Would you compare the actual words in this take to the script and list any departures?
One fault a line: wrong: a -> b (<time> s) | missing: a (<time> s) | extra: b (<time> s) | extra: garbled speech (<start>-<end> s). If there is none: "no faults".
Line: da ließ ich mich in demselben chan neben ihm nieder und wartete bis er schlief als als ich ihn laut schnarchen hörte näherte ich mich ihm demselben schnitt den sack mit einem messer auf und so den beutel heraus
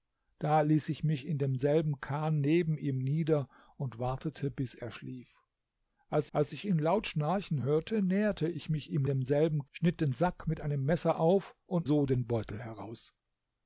no faults